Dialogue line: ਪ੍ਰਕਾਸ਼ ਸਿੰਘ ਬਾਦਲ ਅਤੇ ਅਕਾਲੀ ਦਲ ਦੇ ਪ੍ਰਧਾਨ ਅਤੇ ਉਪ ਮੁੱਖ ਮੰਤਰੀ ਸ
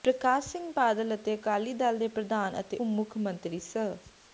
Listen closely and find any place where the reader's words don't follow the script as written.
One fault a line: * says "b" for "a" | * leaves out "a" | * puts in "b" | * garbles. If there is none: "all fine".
* leaves out "ਉਪ"